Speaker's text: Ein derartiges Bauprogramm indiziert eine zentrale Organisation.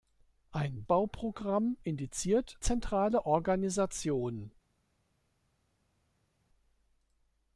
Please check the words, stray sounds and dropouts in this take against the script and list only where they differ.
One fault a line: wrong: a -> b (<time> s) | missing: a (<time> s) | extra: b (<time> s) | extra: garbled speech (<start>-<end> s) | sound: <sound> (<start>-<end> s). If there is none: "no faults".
missing: derartiges (0.8 s)
missing: eine (2.6 s)